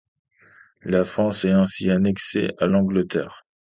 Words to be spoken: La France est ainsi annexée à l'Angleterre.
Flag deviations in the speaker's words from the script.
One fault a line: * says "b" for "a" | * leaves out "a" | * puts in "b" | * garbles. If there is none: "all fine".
all fine